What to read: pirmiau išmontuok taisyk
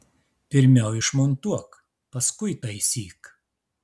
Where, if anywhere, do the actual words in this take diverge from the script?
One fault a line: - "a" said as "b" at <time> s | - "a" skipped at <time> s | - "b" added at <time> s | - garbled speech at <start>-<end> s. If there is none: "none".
- "paskui" added at 2.1 s